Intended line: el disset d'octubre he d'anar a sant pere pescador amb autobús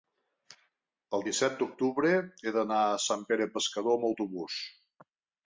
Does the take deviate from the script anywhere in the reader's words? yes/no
no